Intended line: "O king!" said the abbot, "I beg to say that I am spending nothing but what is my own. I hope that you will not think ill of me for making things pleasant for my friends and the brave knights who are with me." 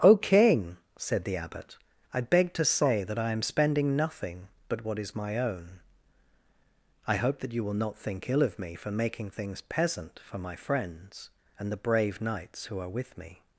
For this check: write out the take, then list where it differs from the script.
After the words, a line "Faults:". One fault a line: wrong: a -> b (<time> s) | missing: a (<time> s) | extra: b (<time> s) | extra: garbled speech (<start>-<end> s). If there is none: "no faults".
"O king!" said the abbot, "I beg to say that I am spending nothing but what is my own. I hope that you will not think ill of me for making things peasant for my friends and the brave knights who are with me."
Faults:
wrong: pleasant -> peasant (9.6 s)